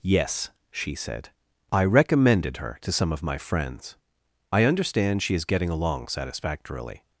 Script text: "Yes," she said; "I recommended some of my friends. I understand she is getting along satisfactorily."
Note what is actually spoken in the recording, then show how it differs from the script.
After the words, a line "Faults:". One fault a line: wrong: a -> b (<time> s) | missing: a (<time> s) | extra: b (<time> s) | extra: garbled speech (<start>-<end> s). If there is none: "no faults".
"Yes," she said; "I recommended her to some of my friends. I understand she is getting along satisfactorily."
Faults:
extra: her to (2.6 s)